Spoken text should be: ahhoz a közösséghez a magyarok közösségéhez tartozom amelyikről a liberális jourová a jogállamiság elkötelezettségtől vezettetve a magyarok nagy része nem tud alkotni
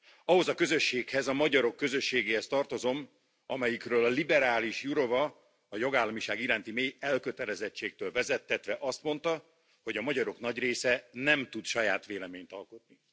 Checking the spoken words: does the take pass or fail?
fail